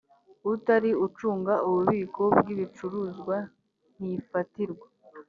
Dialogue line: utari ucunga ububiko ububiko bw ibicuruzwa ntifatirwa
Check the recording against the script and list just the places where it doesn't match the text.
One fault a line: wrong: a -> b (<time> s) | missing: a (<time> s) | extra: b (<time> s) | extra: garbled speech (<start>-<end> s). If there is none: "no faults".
missing: ububiko (2.2 s)